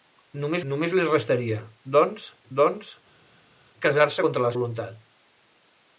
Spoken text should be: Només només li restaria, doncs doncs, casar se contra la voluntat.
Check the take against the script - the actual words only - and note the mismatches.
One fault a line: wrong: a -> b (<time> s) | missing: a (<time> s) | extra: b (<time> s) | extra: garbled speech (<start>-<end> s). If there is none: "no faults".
no faults